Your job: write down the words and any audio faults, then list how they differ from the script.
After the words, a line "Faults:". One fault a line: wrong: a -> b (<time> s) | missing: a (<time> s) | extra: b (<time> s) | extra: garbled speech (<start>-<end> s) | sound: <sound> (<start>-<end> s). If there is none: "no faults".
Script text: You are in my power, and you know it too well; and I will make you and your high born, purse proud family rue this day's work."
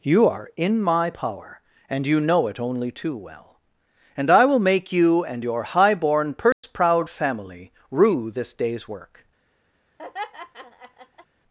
You are in my power, and you know it only too well; and I will make you and your high born, purse proud family rue this day's work."
Faults:
extra: only (2.6 s)
sound: dropout (6.5-6.6 s)
sound: laugh (10.0-11.3 s)